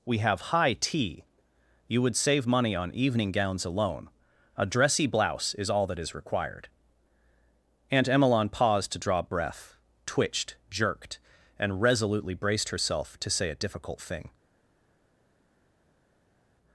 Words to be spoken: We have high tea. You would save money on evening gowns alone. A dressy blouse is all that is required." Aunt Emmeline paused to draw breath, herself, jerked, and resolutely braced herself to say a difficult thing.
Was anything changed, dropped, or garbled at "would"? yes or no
no